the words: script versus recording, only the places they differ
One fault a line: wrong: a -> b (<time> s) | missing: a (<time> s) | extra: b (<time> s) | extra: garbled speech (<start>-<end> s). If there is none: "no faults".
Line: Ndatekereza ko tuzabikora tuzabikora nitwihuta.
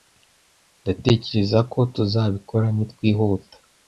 missing: tuzabikora (2.7 s)